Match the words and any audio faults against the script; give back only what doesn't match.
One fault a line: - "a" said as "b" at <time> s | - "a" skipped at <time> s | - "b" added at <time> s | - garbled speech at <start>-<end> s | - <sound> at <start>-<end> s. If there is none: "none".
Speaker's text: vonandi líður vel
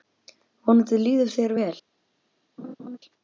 - "þér" added at 1.4 s
- laugh at 2.6-3.0 s